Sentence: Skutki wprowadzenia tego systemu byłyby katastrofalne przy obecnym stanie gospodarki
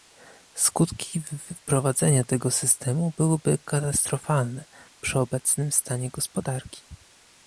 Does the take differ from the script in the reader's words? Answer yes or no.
no